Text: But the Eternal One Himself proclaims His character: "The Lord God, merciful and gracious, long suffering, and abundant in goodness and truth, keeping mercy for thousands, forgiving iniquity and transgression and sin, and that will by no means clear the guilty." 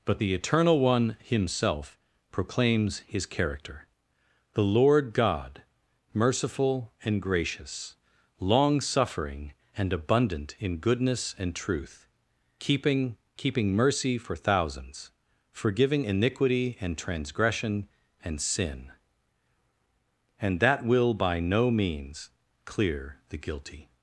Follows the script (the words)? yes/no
no